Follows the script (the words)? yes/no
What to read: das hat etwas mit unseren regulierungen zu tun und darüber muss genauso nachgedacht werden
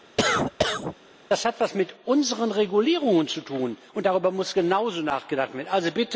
yes